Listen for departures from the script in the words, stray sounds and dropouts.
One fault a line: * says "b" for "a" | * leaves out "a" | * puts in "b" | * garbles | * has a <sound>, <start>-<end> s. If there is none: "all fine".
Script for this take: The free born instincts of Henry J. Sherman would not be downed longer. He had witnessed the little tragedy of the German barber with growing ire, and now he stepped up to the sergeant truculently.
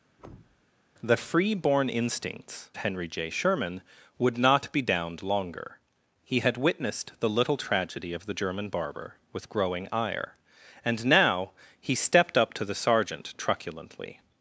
* has a thud, 0.2-0.6 s
* leaves out "of"